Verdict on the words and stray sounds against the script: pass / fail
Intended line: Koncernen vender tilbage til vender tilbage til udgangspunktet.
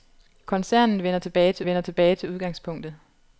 pass